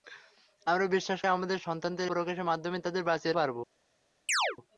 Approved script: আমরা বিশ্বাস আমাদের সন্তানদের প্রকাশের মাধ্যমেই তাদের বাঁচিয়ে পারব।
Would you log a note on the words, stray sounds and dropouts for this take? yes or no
yes